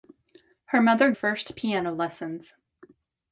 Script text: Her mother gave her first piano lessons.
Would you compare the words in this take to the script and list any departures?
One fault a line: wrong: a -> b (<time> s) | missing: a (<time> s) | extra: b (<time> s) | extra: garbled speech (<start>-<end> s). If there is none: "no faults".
missing: gave her (1.1 s)